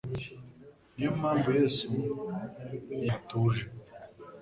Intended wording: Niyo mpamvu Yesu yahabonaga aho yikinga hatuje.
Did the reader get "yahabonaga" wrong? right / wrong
wrong